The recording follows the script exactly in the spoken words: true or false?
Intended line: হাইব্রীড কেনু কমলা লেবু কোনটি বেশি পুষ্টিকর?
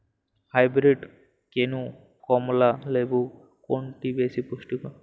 true